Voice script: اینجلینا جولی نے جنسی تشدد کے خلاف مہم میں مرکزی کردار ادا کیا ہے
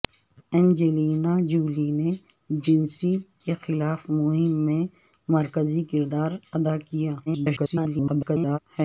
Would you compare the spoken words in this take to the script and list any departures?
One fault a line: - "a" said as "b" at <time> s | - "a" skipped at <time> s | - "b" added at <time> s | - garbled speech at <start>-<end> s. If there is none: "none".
- "تشدد" skipped at 3.1 s
- garbled speech at 7.3-8.6 s